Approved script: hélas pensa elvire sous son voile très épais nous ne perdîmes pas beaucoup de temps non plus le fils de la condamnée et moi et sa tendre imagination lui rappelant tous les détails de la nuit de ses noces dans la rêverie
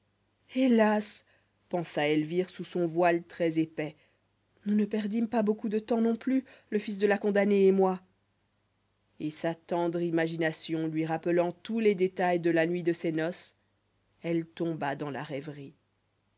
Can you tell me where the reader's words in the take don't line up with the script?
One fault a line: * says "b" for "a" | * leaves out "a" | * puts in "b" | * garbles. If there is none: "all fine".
* puts in "elle tomba"